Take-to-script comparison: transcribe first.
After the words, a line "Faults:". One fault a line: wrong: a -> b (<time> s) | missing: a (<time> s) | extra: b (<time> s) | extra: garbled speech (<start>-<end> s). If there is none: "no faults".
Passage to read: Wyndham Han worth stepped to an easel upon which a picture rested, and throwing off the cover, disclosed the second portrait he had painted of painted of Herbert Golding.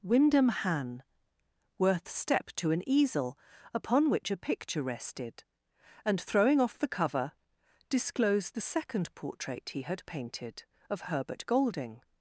Wyndham Han worth stepped to an easel upon which a picture rested, and throwing off the cover, disclosed the second portrait he had painted of Herbert Golding.
Faults:
missing: painted of (11.1 s)